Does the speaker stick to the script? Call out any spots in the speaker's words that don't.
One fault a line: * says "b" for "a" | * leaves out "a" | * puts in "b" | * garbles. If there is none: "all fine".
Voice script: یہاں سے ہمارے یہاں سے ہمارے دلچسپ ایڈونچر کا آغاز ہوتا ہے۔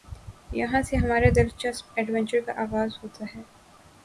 * leaves out "یہاں سے ہمارے"